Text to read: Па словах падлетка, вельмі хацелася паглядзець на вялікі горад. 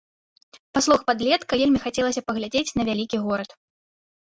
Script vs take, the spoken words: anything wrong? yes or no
no